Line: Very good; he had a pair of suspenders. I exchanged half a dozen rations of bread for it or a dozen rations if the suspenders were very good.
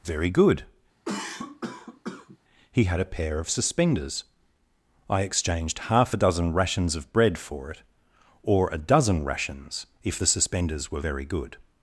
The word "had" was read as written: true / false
true